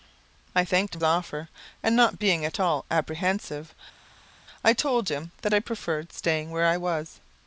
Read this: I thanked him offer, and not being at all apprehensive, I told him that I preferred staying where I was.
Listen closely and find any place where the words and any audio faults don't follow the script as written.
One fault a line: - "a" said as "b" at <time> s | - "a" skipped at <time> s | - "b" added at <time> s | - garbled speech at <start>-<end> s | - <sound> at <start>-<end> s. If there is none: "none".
none